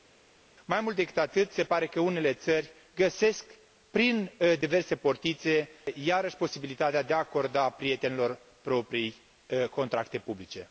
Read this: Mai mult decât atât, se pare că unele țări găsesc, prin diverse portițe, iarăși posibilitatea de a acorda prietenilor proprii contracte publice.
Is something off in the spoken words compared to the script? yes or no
no